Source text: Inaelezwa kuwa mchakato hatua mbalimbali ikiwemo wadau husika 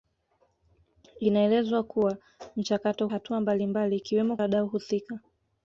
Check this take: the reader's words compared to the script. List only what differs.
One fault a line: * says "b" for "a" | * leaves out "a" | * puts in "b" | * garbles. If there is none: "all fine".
all fine